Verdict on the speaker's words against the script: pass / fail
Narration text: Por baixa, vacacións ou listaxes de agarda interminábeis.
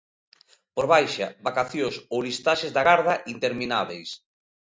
pass